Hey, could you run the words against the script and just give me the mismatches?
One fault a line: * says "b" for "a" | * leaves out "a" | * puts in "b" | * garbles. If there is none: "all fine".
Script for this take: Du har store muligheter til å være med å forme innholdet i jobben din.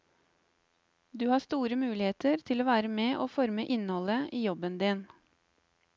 all fine